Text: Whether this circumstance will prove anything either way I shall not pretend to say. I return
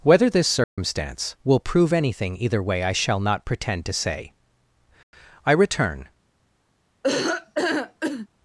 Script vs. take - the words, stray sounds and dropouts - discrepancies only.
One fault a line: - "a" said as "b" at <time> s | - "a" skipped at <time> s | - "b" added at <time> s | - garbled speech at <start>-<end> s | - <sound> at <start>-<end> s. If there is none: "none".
- dropout at 0.6-0.8 s
- laugh at 7.0-8.3 s